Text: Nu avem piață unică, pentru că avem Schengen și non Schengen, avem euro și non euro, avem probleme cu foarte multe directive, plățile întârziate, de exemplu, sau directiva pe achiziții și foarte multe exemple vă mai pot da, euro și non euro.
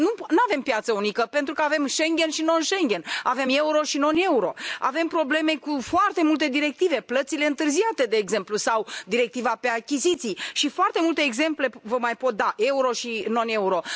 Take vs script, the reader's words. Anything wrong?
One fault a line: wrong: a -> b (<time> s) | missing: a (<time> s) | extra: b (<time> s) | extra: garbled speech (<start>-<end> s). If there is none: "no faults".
no faults